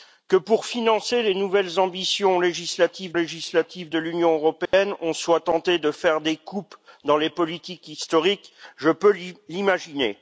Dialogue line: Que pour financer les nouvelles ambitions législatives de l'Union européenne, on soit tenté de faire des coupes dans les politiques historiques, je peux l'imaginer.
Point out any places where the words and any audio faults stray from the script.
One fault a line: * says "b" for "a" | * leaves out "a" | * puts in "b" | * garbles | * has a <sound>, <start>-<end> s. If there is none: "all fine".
* puts in "législatives"
* has a dropout, 4.7-4.7 s